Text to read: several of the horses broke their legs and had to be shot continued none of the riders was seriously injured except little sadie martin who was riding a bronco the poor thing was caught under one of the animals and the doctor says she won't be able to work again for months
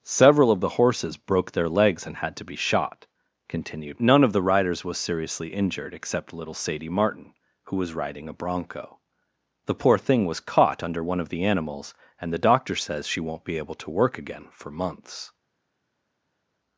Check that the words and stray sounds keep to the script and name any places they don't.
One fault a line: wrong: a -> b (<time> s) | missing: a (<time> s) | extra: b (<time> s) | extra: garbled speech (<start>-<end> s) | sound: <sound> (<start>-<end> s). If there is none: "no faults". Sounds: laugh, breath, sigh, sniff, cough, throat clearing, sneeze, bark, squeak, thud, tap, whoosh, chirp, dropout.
no faults